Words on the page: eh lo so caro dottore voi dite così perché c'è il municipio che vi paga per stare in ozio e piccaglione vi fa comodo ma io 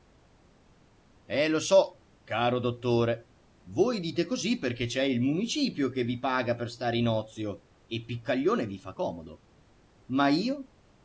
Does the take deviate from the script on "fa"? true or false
false